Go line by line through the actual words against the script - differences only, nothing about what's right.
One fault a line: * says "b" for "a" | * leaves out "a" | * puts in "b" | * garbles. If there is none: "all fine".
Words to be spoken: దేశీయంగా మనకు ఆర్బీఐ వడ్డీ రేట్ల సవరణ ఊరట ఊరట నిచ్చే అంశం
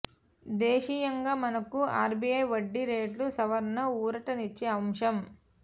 * leaves out "ఊరట"